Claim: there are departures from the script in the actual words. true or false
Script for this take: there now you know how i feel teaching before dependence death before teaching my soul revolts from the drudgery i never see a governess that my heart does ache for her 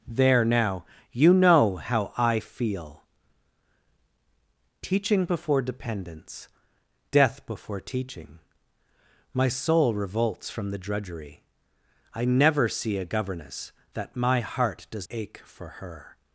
false